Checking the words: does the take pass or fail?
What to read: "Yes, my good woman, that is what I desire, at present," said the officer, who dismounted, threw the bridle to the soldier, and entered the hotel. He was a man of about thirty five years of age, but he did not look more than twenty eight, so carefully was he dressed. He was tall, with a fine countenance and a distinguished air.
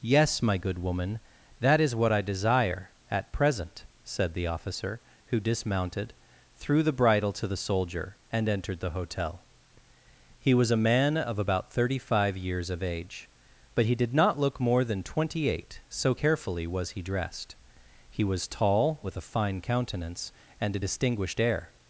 pass